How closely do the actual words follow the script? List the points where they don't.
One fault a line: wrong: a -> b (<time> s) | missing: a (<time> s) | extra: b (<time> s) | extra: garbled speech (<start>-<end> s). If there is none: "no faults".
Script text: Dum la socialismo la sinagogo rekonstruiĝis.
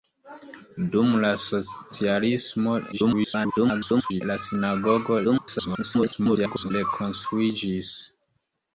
extra: garbled speech (2.9-4.2 s)
extra: garbled speech (5.2-6.7 s)